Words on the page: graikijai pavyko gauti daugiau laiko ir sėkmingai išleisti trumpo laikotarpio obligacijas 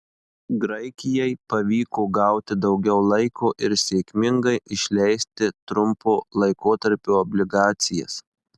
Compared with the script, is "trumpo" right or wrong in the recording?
right